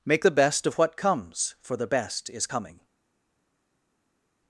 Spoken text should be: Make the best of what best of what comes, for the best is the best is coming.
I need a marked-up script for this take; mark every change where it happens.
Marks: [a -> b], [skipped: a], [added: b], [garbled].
Make the best of what [skipped: best of what] comes, for the best is [skipped: the best is] coming.